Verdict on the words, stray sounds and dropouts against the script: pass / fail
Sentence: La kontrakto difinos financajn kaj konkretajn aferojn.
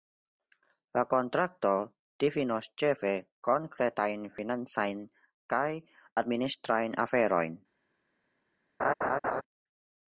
fail